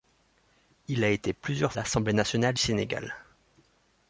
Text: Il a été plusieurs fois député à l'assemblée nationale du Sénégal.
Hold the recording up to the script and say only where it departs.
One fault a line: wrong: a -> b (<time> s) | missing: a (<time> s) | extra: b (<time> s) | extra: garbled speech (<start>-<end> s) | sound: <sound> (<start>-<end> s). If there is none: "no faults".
missing: fois député à (1.7 s)
missing: du (2.5 s)